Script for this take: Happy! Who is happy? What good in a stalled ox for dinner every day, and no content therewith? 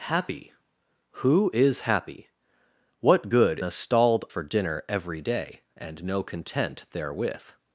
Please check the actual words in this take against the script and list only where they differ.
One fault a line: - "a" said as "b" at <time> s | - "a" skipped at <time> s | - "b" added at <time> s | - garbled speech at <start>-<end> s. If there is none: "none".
- "in" skipped at 3.6 s
- "ox" skipped at 4.3 s